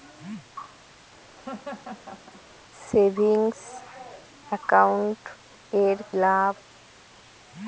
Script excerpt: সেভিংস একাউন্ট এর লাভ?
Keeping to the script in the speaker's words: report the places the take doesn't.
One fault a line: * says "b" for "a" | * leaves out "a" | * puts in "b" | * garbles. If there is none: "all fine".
all fine